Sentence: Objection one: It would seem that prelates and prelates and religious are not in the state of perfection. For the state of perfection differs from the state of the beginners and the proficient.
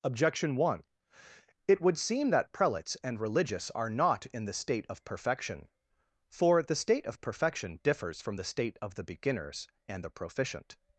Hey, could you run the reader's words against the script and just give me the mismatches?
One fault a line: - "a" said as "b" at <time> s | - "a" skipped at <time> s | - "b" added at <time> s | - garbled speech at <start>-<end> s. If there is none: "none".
- "prelates and" skipped at 3.2 s